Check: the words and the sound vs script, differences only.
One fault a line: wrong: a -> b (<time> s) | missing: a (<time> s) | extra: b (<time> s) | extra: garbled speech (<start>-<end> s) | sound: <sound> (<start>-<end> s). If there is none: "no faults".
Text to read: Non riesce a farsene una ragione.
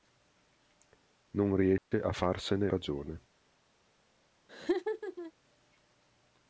sound: dropout (1.8-1.9 s)
missing: una (2.7 s)
sound: laugh (4.5-5.3 s)